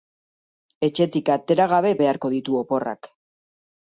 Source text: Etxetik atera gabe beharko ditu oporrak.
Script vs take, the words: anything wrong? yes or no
no